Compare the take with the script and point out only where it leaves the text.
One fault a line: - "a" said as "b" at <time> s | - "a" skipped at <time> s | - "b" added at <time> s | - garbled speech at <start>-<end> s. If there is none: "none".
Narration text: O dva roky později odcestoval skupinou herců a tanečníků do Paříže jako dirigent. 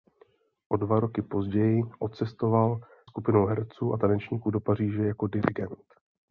none